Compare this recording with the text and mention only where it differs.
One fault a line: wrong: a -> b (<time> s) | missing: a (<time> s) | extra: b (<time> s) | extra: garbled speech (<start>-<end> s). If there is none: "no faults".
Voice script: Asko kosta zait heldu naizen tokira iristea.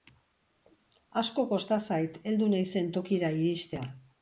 no faults